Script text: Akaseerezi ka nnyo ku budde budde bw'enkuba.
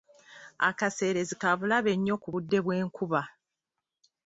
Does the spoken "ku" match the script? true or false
true